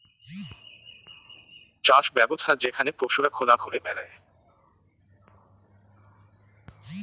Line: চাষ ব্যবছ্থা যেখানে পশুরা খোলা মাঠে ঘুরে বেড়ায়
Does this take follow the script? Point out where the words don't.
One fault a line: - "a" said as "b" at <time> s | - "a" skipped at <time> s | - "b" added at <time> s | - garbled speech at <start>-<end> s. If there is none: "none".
- "মাঠে" skipped at 3.5 s